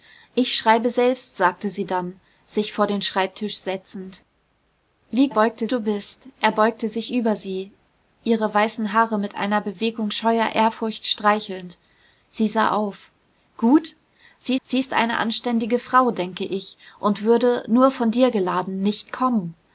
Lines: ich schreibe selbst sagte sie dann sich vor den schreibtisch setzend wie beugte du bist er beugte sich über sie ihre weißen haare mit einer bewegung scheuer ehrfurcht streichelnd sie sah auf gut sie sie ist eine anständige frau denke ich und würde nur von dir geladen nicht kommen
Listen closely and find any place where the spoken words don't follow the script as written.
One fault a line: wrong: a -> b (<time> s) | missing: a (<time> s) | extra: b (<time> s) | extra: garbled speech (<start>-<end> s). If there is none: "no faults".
no faults